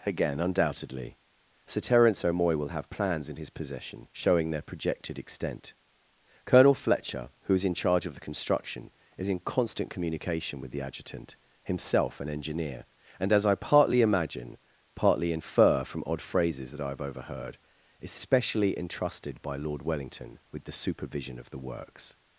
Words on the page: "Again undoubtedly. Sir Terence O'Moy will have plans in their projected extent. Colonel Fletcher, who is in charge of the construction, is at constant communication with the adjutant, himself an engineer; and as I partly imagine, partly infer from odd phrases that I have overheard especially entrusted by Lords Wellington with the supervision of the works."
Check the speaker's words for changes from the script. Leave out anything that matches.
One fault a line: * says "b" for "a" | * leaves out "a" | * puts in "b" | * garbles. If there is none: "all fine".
* puts in "his possession showing"
* says "in" for "at"
* says "Lord" for "Lords"